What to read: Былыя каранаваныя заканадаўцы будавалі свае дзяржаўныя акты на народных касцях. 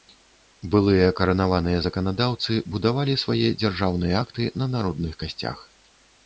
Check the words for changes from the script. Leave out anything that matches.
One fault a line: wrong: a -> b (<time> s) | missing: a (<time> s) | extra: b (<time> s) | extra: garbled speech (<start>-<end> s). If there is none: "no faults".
no faults